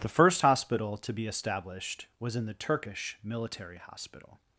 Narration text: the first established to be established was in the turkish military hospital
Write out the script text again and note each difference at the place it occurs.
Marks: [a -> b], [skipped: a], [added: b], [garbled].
the first [established -> hospital] to be established was in the turkish military hospital